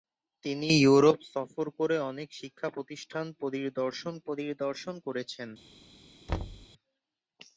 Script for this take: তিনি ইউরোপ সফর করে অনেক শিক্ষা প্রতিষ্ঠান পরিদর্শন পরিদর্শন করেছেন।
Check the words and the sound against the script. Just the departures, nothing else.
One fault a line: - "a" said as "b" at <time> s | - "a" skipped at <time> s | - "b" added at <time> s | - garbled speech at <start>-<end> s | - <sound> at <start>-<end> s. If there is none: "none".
- thud at 6.3-6.7 s